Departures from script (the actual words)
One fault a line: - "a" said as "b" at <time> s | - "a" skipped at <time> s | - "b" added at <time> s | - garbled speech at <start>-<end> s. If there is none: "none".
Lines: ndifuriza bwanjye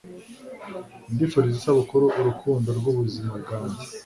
- "isabukuru urukundo rw'ubuzima" added at 1.6 s